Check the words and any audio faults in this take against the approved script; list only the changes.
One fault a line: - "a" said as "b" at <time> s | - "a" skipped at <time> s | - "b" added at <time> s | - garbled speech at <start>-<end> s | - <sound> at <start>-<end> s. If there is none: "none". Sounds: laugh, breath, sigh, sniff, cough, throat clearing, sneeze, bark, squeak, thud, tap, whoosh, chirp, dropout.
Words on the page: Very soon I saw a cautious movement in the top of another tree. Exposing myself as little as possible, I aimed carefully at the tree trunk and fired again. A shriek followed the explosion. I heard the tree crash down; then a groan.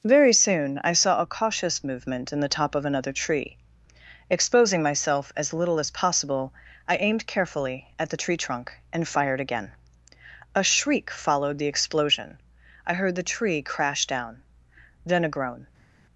none